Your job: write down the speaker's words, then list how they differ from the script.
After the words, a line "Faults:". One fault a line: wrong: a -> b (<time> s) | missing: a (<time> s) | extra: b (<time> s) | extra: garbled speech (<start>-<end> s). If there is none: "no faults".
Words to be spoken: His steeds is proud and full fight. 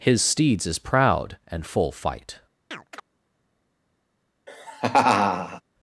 His steeds is proud and full fight.
Faults:
no faults